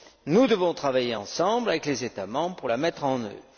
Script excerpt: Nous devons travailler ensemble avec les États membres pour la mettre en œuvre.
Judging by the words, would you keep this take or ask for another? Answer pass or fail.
pass